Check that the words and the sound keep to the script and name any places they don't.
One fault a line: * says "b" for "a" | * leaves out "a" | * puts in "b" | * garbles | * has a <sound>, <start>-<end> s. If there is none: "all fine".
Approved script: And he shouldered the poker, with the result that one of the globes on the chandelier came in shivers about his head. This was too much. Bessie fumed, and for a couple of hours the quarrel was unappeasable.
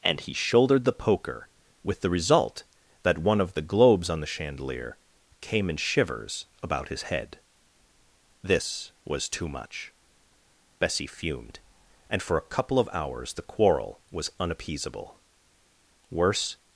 * puts in "Worse"